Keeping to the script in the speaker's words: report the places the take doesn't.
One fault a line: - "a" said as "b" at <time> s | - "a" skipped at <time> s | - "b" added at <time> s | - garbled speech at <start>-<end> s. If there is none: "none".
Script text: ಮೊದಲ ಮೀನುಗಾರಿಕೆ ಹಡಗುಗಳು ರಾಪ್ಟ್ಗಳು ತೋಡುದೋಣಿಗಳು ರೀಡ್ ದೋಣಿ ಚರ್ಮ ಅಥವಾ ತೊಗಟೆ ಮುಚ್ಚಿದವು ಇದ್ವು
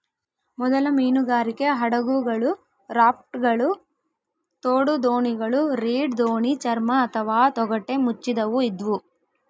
none